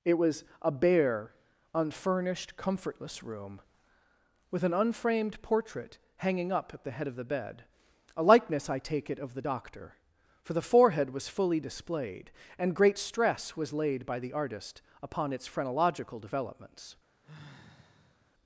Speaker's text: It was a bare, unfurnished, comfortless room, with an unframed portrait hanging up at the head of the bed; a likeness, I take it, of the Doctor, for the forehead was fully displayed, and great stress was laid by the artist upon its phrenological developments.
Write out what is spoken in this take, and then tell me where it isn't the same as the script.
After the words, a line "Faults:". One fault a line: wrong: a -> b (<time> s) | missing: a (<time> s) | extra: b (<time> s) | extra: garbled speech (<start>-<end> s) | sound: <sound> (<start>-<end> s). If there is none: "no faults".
It was a bare, unfurnished, comfortless room, with an unframed portrait hanging up at the head of the bed; a likeness, I take it, of the Doctor, for the forehead was fully displayed, and great stress was laid by the artist upon its phrenological developments.
Faults:
sound: sigh (17.2-18.3 s)